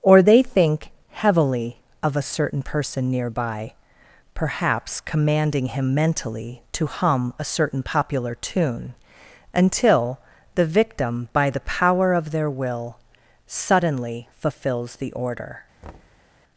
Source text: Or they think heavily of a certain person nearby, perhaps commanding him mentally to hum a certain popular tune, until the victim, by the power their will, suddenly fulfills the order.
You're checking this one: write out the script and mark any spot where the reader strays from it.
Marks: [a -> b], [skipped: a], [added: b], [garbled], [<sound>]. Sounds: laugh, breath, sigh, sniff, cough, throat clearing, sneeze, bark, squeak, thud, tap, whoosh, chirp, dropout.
Or they think heavily of a certain person nearby, perhaps commanding him mentally to hum a certain popular tune, until the victim, by the power [added: of] their will, suddenly fulfills the order. [thud]